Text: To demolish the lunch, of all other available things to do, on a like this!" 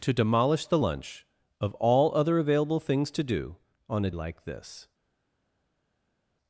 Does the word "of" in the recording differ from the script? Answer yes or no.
no